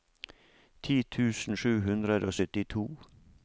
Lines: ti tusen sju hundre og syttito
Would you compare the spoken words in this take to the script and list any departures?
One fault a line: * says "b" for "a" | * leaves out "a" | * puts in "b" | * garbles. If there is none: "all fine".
all fine